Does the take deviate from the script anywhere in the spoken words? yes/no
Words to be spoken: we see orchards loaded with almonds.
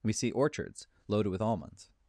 no